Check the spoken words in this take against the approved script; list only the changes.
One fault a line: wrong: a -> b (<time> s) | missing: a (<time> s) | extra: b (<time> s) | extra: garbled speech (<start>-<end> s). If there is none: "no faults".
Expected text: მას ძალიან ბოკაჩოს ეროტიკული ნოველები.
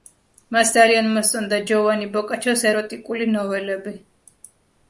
extra: მოსწონდა ჯოვანი (1.1 s)